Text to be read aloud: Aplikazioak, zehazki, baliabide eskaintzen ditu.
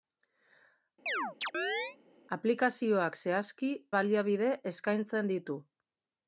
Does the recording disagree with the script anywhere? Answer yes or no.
no